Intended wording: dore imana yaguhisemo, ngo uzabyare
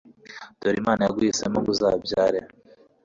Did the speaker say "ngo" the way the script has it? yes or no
yes